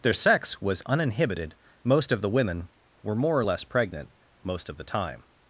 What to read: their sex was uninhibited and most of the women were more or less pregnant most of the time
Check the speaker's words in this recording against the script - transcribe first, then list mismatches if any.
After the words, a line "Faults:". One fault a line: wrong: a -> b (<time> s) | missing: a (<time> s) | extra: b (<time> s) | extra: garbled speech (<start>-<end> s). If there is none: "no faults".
their sex was uninhibited most of the women were more or less pregnant most of the time
Faults:
missing: and (1.5 s)